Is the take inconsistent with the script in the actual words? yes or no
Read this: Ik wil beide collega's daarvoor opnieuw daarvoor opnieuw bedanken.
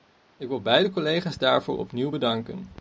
yes